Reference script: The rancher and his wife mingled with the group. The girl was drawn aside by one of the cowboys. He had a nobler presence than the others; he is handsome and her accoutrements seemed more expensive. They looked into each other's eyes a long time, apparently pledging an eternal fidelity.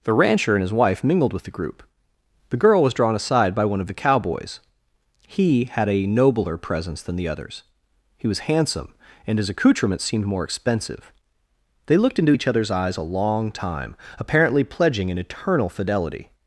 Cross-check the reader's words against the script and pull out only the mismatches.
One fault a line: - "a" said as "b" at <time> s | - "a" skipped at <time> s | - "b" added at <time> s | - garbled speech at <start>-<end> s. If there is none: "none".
- "is" said as "was" at 8.3 s
- "her" said as "his" at 9.4 s